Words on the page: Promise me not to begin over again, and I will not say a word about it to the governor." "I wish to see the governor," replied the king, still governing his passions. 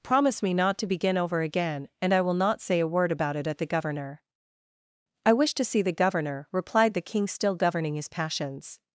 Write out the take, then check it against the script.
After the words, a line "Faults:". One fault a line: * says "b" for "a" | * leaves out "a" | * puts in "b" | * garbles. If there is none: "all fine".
Promise me not to begin over again, and I will not say a word about it at the governor." "I wish to see the governor," replied the king, still governing his passions.
Faults:
* says "at" for "to"